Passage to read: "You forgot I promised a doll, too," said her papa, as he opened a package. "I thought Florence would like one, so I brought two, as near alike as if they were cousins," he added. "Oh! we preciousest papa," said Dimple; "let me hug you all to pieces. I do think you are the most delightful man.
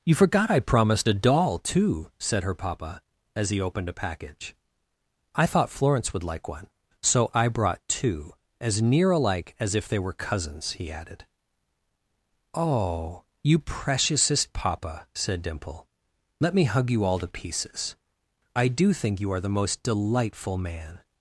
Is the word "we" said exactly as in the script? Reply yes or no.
no